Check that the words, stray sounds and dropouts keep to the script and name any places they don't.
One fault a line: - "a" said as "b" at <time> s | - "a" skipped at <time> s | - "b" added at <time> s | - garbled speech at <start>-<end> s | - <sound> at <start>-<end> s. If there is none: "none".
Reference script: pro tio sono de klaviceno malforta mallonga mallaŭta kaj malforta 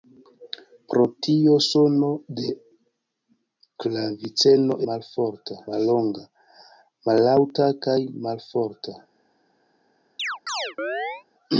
- chirp at 10.2-11.2 s